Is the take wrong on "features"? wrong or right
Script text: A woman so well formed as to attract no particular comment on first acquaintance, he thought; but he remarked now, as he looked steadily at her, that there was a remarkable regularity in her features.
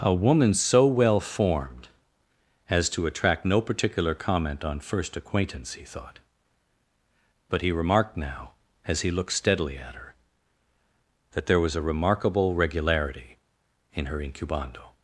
wrong